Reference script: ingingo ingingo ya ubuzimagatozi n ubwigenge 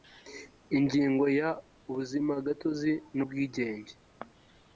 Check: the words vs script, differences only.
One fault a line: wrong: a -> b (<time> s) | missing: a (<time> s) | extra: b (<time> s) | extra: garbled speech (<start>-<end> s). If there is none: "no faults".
missing: ingingo (1.2 s)